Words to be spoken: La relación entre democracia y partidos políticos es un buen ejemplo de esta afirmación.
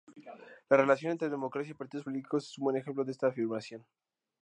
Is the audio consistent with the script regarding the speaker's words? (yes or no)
yes